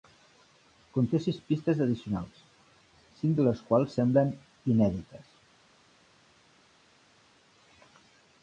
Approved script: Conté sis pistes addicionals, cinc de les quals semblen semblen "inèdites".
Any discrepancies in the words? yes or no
yes